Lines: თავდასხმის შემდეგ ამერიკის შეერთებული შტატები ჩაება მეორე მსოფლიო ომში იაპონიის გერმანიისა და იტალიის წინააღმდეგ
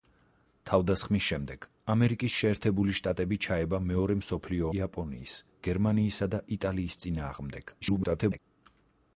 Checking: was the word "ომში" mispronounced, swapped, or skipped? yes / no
yes